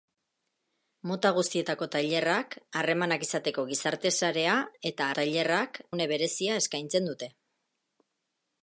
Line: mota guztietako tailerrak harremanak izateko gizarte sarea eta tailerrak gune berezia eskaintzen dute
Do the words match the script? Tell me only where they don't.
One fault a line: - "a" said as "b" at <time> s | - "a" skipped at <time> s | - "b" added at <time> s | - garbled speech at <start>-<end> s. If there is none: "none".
none